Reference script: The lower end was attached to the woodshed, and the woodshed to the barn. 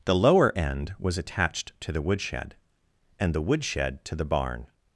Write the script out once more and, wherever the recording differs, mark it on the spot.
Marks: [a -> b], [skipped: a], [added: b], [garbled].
The lower end was attached to the woodshed, and the woodshed to the barn.